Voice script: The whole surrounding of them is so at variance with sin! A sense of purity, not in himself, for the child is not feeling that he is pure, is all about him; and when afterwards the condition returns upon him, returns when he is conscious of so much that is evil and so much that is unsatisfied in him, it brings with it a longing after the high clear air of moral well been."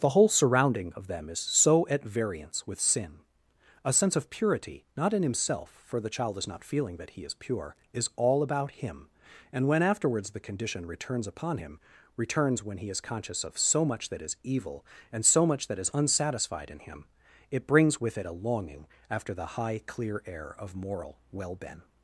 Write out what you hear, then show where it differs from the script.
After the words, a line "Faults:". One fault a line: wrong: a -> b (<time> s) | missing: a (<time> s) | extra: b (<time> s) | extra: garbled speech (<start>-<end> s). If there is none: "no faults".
The whole surrounding of them is so at variance with sin! A sense of purity, not in himself, for the child is not feeling that he is pure, is all about him; and when afterwards the condition returns upon him, returns when he is conscious of so much that is evil and so much that is unsatisfied in him, it brings with it a longing after the high clear air of moral well been."
Faults:
no faults